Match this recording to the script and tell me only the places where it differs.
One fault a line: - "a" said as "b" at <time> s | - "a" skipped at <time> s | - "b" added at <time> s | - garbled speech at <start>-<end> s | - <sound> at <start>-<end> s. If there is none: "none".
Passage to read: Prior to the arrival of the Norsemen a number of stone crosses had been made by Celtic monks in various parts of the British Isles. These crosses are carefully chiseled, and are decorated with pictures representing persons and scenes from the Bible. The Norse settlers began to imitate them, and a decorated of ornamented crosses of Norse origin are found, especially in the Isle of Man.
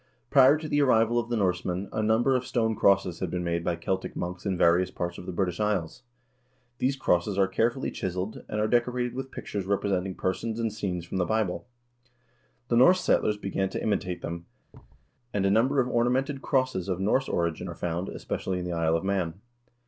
- thud at 14.7-15.1 s
- "decorated" said as "number" at 15.5 s